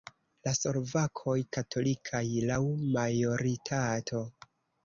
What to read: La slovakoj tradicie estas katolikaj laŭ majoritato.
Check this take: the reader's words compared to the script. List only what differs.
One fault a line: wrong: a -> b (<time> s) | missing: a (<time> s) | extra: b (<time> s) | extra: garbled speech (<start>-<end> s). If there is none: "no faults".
missing: tradicie estas (1.4 s)